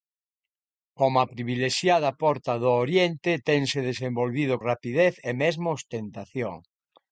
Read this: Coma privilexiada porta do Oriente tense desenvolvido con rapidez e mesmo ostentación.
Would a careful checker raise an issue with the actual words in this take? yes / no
yes